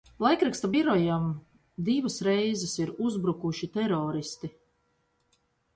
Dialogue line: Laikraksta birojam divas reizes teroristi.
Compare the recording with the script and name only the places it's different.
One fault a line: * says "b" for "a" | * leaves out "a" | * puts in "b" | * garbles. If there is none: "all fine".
* puts in "ir uzbrukuši"